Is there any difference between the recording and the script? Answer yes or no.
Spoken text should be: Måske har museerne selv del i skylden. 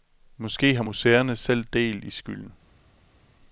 no